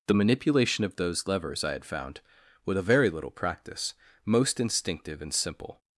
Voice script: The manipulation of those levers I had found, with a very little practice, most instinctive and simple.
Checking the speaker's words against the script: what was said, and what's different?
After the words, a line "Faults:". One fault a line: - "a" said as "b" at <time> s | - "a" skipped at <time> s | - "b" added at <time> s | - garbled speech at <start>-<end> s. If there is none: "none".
The manipulation of those levers I had found, with a very little practice, most instinctive and simple.
Faults:
none